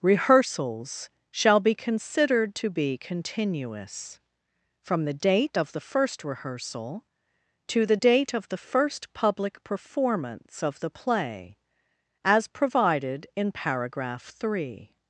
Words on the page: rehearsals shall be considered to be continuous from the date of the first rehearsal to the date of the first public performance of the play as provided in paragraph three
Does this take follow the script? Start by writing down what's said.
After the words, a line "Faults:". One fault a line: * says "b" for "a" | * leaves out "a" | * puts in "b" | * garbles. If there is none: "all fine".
rehearsals shall be considered to be continuous from the date of the first rehearsal to the date of the first public performance of the play as provided in paragraph three
Faults:
all fine